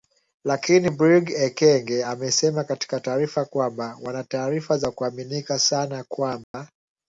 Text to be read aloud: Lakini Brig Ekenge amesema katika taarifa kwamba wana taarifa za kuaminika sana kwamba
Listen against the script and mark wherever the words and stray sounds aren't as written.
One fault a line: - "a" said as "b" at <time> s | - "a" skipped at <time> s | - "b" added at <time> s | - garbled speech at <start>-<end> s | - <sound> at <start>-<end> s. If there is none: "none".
- dropout at 6.4-6.5 s